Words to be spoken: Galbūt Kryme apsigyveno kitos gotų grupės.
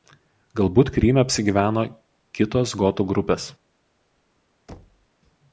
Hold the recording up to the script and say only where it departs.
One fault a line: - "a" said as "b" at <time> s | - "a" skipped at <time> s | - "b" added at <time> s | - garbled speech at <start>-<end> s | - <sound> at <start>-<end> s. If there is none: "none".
- thud at 4.7-5.1 s